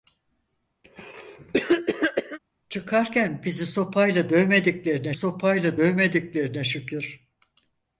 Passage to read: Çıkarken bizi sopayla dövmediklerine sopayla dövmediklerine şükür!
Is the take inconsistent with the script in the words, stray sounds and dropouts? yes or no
yes